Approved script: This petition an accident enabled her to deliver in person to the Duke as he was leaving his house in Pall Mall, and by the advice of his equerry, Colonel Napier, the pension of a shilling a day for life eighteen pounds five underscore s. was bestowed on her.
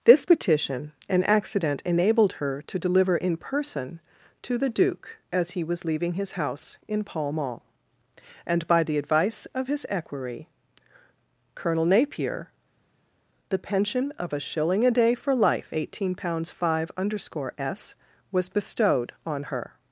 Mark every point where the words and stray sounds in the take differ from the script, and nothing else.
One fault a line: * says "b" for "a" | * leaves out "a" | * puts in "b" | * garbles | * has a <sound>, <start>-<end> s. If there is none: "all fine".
all fine